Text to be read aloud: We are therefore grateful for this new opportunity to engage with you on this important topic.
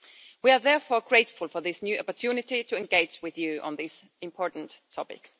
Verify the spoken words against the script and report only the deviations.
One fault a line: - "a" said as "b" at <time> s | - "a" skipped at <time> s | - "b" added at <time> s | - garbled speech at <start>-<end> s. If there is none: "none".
none